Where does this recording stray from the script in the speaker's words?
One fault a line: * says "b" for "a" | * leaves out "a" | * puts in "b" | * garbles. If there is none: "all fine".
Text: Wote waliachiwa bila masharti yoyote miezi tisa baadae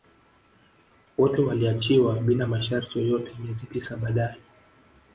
all fine